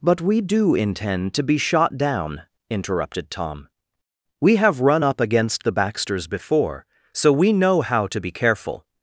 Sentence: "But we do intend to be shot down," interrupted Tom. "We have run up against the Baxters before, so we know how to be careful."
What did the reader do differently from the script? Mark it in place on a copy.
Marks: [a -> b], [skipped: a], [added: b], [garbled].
"But we do intend to be shot down," interrupted Tom. "We have run up against the Baxters before, so we know how to be careful."